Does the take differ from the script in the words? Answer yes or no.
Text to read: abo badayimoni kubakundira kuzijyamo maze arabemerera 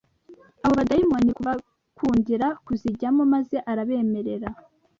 no